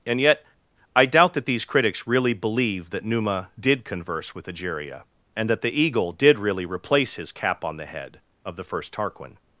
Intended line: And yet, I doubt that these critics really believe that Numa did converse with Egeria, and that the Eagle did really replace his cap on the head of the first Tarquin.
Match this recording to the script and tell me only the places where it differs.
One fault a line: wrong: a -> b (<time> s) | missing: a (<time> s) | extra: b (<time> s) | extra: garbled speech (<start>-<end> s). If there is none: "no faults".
no faults